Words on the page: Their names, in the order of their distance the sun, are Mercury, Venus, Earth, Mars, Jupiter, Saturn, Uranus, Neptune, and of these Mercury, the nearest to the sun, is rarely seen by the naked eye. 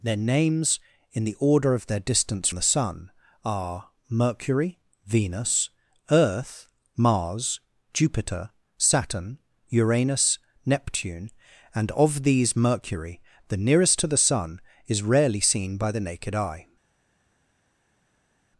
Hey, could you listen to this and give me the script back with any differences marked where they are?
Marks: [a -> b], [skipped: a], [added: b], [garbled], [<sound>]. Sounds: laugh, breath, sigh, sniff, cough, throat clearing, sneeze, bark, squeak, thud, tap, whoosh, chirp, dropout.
Their names, in the order of their distance the sun, are Mercury, Venus, Earth, Mars, Jupiter, Saturn, Uranus, Neptune, and of these Mercury, the nearest to the sun, is rarely seen by the naked eye.